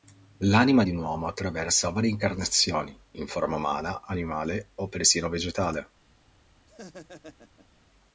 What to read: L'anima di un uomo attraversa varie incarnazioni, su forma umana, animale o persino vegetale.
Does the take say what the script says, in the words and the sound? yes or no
no